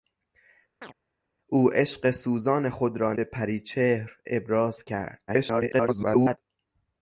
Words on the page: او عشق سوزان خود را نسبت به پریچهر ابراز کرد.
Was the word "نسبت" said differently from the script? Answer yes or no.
yes